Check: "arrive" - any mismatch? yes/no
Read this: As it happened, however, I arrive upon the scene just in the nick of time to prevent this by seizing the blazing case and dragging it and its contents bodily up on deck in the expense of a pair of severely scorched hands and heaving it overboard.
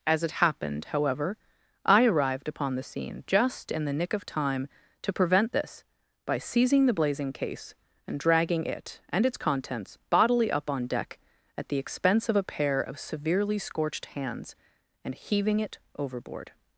yes